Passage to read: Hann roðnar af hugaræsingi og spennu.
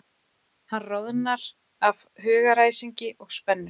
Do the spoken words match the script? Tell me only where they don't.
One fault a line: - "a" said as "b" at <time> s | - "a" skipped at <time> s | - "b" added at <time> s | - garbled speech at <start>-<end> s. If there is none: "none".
none